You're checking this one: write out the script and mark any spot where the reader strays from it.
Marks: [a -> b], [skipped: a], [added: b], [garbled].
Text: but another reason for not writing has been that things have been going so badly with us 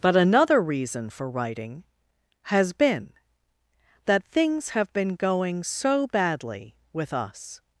but another reason for [skipped: not] writing has been that things have been going so badly with us